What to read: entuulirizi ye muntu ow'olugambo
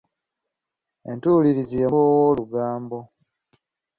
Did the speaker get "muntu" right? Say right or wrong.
wrong